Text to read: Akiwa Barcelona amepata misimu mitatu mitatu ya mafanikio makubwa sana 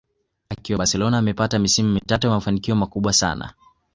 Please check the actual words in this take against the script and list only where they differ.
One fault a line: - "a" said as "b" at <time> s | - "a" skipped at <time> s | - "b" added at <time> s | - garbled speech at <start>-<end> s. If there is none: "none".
- "mitatu" skipped at 2.3 s